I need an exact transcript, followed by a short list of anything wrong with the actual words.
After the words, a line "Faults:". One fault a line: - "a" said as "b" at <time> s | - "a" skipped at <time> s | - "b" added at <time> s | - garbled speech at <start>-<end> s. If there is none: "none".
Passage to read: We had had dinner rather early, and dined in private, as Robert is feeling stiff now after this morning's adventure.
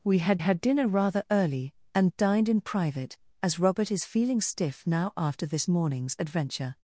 We had had dinner rather early, and dined in private, as Robert is feeling stiff now after this morning's adventure.
Faults:
none